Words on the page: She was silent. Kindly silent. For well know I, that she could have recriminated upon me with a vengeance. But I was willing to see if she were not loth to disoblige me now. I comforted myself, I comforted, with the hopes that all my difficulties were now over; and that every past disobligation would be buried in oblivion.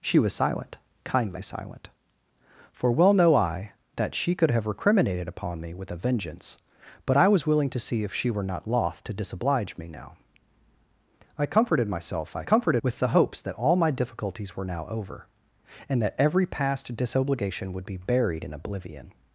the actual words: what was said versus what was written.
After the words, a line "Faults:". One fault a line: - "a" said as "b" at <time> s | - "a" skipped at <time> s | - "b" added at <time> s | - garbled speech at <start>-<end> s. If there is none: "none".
She was silent. Kindly silent. For well know I, that she could have recriminated upon me with a vengeance. But I was willing to see if she were not loth to disoblige me now. I comforted myself, I comforted, with the hopes that all my difficulties were now over; and that every past disobligation would be buried in oblivion.
Faults:
none